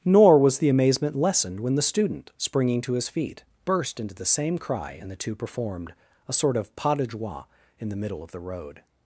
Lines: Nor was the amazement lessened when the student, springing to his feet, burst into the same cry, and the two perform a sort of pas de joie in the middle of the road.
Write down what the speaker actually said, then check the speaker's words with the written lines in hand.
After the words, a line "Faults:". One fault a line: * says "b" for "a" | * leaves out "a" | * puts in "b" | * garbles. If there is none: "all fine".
Nor was the amazement lessened when the student, springing to his feet, burst into the same cry, and the two performed a sort of pas de joie in the middle of the road.
Faults:
* says "performed" for "perform"